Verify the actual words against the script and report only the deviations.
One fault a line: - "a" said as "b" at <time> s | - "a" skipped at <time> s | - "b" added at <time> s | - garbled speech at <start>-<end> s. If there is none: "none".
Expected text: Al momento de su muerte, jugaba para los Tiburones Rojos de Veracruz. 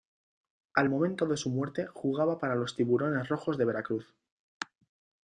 none